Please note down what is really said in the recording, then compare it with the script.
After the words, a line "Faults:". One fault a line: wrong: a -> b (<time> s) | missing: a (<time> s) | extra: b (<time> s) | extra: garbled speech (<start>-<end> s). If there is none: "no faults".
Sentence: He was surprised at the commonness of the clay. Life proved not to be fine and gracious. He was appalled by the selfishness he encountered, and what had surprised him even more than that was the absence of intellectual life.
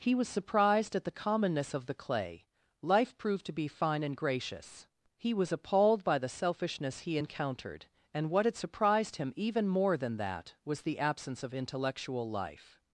He was surprised at the commonness of the clay. Life proved to be fine and gracious. He was appalled by the selfishness he encountered, and what had surprised him even more than that was the absence of intellectual life.
Faults:
missing: not (3.5 s)